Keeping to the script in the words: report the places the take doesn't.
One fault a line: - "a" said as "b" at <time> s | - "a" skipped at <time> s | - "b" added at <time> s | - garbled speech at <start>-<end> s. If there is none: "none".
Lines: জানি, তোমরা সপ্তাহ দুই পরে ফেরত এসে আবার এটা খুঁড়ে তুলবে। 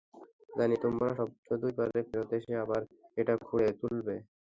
none